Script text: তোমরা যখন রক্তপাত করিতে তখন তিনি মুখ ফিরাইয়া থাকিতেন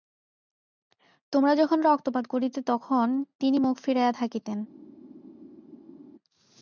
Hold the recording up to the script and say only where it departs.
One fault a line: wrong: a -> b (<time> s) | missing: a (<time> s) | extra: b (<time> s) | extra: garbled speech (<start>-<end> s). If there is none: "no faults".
no faults